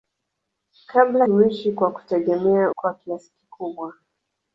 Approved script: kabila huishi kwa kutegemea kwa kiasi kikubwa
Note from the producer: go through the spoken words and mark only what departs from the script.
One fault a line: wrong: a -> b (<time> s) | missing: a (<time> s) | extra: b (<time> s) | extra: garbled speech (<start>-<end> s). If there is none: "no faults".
no faults